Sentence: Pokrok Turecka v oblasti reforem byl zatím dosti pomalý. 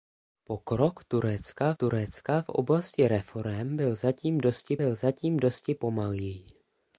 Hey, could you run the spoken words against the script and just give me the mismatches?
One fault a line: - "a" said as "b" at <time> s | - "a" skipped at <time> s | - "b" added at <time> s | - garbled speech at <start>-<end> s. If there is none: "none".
- "Turecka" added at 1.7 s
- "byl zatím dosti" added at 4.8 s